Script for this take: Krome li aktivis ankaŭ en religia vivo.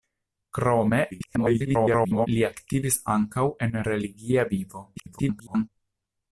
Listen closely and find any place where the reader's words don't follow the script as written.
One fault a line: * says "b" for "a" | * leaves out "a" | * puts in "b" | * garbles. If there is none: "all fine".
* garbles
* garbles